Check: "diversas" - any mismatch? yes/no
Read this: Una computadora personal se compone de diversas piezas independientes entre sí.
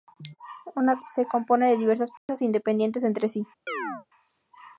no